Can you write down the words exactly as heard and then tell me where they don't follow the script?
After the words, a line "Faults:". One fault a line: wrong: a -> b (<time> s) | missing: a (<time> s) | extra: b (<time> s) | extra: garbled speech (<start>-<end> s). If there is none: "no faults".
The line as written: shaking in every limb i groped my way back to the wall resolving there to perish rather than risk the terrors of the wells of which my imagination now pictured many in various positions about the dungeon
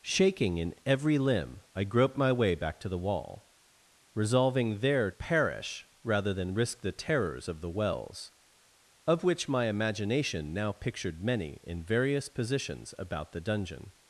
shaking in every limb i groped my way back to the wall resolving there perish rather than risk the terrors of the wells of which my imagination now pictured many in various positions about the dungeon
Faults:
missing: to (5.1 s)